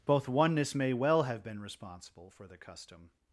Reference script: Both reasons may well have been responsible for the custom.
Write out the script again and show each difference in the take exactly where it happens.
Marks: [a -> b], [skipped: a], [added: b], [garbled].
Both [reasons -> oneness] may well have been responsible for the custom.